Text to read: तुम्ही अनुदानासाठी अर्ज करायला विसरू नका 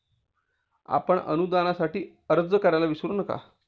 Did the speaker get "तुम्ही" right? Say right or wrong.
wrong